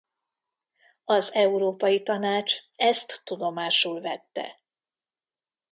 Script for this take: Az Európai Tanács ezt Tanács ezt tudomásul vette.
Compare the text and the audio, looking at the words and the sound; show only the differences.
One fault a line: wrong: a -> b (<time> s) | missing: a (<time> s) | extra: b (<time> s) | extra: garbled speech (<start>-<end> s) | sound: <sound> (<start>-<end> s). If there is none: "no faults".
missing: Tanács ezt (3.2 s)